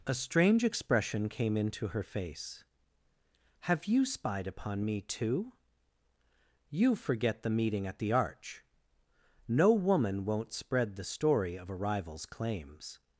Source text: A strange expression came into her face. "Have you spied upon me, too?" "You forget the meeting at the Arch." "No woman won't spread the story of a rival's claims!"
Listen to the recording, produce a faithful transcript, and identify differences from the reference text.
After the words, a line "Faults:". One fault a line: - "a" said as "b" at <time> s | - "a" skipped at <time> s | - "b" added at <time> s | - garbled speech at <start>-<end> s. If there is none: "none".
A strange expression came into her face. "Have you spied upon me, too?" "You forget the meeting at the Arch." "No woman won't spread the story of a rival's claims!"
Faults:
none